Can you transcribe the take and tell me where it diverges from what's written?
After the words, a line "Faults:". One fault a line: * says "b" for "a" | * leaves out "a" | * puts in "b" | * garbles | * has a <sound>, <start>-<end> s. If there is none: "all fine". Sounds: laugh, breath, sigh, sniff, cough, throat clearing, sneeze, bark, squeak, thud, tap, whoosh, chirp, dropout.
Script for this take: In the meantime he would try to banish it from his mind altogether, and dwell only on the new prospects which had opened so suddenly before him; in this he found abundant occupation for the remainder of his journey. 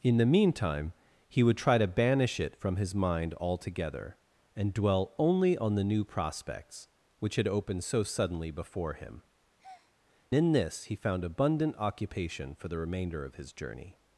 In the meantime he would try to banish it from his mind altogether, and dwell only on the new prospects which had opened so suddenly before him; in this he found abundant occupation for the remainder of his journey.
Faults:
* has a breath, 9.6-9.9 s